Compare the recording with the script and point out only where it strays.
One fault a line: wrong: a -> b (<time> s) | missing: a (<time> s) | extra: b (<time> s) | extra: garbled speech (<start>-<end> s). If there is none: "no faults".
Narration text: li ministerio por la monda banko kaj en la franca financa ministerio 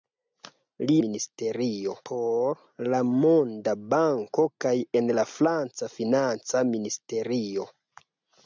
no faults